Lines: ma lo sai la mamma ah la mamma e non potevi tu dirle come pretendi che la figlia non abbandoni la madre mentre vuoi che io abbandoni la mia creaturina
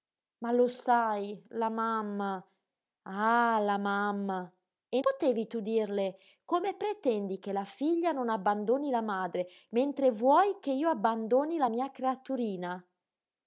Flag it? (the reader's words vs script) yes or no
yes